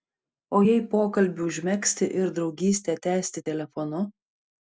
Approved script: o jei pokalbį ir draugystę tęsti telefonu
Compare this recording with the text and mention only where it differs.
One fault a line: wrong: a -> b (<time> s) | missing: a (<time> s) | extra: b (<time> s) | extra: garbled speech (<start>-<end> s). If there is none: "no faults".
extra: užmegzti (1.5 s)